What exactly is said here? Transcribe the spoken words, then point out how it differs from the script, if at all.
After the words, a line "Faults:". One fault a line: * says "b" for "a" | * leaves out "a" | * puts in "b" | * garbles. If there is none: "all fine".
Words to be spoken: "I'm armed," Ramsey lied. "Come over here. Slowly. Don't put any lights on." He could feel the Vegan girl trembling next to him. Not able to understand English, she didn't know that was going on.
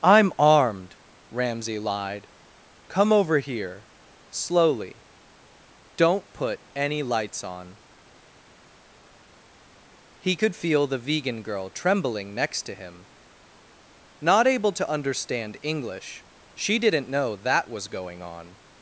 "I'm armed," Ramsey lied. "Come over here. Slowly. Don't put any lights on." He could feel the Vegan girl trembling next to him. Not able to understand English, she didn't know that was going on.
Faults:
all fine